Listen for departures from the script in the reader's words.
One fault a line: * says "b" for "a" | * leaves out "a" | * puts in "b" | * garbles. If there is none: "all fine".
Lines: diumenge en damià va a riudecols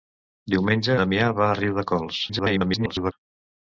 * leaves out "en"
* garbles